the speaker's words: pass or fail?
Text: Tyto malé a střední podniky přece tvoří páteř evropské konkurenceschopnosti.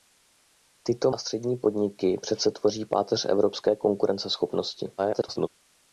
fail